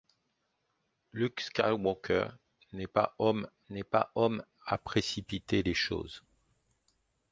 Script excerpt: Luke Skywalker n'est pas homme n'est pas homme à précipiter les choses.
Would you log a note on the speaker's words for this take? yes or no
no